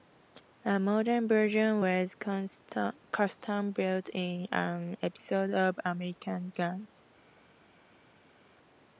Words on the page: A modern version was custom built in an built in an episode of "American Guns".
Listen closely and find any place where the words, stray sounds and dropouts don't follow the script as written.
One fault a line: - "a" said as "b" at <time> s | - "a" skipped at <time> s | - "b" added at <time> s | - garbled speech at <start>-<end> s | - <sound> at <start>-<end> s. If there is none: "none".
- "built in an" skipped at 4.9 s